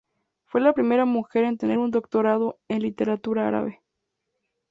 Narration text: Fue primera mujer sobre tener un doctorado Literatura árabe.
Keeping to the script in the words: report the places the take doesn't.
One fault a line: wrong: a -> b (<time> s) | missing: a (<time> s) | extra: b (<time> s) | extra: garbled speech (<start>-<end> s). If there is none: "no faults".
extra: la (0.6 s)
wrong: sobre -> en (1.4 s)
extra: en (2.7 s)